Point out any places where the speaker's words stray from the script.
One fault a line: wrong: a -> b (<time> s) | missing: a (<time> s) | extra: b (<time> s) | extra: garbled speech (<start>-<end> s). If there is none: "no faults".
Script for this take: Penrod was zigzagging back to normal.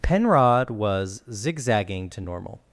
missing: back (2.1 s)